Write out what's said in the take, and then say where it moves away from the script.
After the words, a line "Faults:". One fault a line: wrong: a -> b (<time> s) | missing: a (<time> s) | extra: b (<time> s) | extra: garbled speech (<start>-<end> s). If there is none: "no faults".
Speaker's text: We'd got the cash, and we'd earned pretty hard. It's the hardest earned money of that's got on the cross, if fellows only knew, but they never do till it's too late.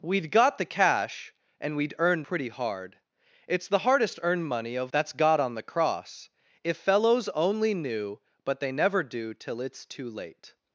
We'd got the cash, and we'd earned pretty hard. It's the hardest earned money of that's got on the cross, if fellows only knew, but they never do till it's too late.
Faults:
no faults